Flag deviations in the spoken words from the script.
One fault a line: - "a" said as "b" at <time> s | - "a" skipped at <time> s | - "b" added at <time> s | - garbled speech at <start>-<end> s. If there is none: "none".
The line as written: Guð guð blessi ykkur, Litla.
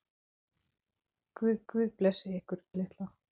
none